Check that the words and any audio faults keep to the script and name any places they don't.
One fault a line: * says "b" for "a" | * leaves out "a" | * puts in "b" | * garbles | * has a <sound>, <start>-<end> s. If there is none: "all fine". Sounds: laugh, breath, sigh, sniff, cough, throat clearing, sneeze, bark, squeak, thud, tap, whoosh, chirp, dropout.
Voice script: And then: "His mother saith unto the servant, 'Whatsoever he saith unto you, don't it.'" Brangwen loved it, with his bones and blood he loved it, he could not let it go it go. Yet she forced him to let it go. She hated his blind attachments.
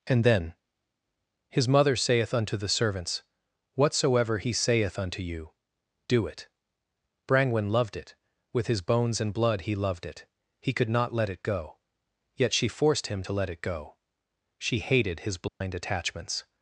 * says "servants" for "servant"
* says "do" for "don't"
* leaves out "it go"
* has a dropout, 15.5-15.6 s